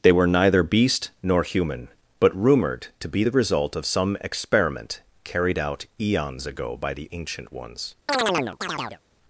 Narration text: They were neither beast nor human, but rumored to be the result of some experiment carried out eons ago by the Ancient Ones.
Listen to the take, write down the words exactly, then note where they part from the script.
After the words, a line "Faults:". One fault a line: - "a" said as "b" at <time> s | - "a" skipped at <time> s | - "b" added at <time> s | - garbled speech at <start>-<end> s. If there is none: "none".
They were neither beast nor human, but rumored to be the result of some experiment carried out eons ago by the Ancient Ones.
Faults:
none